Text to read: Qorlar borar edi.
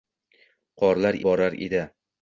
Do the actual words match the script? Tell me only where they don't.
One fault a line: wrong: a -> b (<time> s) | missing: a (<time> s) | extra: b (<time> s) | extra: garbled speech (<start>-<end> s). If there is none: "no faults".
no faults